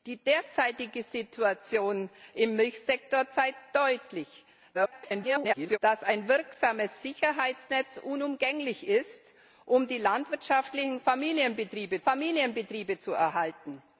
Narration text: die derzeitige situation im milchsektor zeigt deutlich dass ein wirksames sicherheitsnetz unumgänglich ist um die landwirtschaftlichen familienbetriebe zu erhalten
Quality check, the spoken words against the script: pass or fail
fail